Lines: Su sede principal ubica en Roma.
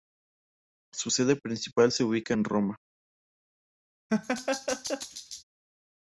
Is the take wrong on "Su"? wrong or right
right